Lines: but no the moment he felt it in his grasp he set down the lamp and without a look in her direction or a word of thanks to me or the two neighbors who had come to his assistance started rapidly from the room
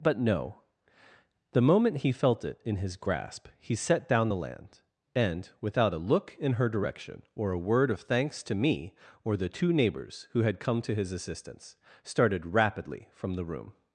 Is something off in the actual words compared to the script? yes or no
yes